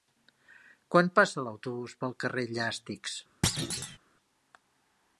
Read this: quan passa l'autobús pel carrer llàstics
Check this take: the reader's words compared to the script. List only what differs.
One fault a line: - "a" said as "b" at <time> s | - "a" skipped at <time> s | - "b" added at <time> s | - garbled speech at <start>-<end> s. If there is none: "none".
none